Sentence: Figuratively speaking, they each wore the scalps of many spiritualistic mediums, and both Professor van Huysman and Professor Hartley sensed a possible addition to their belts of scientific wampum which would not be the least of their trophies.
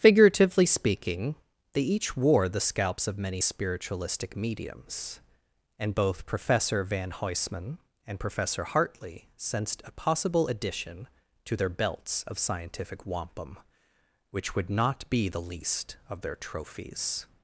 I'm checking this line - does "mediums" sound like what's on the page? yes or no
yes